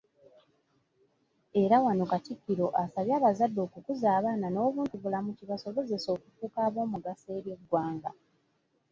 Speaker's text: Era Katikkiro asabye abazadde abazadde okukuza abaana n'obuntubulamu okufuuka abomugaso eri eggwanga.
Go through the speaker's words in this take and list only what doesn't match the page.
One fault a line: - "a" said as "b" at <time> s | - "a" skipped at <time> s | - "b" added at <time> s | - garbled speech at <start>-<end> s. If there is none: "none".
- "wano" added at 1.9 s
- "abazadde" skipped at 3.6 s
- "kibasobozese" added at 5.4 s